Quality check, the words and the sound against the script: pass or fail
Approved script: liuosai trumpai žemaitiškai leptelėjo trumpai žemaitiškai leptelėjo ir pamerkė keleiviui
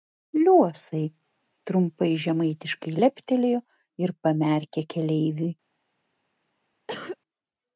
fail